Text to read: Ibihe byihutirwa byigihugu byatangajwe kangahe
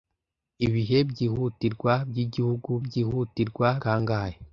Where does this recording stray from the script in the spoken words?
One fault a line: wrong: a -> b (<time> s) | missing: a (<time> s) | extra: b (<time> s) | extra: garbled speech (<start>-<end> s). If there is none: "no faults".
wrong: byatangajwe -> byihutirwa (2.8 s)